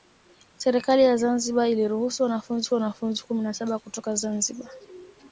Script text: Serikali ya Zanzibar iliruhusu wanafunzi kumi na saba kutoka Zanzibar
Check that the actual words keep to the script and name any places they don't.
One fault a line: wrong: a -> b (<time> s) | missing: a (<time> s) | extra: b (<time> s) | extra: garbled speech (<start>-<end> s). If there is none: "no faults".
extra: wanafunzi (2.7 s)